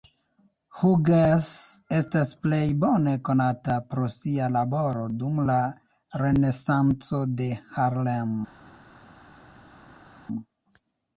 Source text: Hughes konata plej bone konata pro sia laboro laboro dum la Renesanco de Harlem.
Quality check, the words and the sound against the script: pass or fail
fail